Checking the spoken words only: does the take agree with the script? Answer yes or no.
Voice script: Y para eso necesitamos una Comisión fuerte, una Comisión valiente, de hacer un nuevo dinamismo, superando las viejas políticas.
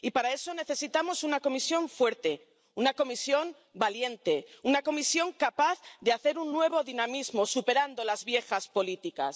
no